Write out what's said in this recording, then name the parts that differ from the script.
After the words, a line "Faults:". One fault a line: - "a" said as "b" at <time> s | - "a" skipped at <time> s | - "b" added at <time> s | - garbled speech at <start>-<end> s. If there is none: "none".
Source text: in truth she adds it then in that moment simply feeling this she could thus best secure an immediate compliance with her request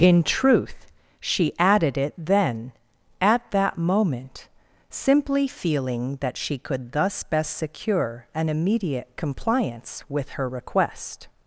in truth she added it then at that moment simply feeling that she could thus best secure an immediate compliance with her request
Faults:
- "adds" said as "added" at 1.6 s
- "in" said as "at" at 3.2 s
- "this" said as "that" at 6.2 s